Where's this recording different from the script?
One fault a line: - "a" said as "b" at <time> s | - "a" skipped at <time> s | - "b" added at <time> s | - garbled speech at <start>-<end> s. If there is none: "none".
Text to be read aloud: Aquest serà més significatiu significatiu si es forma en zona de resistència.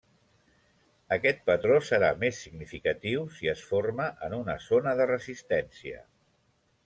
- "patró" added at 1.5 s
- "significatiu" skipped at 3.3 s
- "una" added at 4.4 s